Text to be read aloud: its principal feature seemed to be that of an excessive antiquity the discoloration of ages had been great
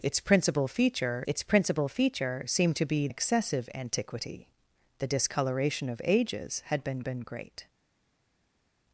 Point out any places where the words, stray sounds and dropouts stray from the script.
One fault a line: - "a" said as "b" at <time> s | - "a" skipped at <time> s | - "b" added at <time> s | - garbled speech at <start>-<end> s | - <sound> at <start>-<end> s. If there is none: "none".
- "its principal feature" added at 1.2 s
- "that of an" skipped at 3.1 s
- "been" added at 7.0 s